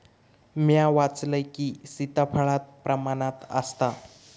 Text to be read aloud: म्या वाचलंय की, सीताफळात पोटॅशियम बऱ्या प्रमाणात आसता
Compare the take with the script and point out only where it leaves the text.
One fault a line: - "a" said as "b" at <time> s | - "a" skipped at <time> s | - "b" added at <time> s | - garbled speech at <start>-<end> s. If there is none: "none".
- "पोटॅशियम बऱ्या" skipped at 2.6 s